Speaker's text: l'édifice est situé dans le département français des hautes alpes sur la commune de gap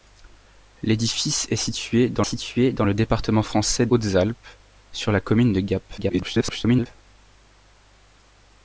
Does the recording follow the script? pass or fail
fail